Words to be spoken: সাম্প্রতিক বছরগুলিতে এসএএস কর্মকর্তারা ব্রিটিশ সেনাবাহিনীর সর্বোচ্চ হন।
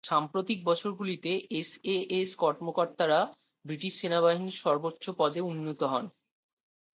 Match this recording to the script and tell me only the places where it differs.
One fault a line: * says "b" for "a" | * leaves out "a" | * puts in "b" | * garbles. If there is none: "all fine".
* puts in "পদে উন্নীত"